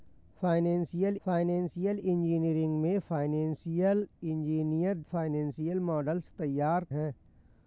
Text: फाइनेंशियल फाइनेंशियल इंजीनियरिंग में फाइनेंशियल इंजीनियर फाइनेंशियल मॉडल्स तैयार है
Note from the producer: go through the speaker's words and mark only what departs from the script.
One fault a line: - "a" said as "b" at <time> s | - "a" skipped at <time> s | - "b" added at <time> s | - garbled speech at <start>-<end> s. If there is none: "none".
none